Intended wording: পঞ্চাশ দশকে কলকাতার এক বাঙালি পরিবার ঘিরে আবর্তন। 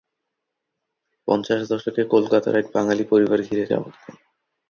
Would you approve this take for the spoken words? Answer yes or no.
yes